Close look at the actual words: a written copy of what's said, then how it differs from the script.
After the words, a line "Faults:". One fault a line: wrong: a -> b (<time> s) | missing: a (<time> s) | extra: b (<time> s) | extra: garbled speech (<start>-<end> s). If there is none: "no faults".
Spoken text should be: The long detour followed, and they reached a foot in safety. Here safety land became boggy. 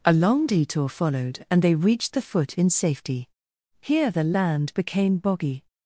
A long detour followed, and they reached the foot in safety. Here the land became boggy.
Faults:
wrong: The -> A (0.0 s)
wrong: a -> the (2.1 s)
wrong: safety -> the (4.1 s)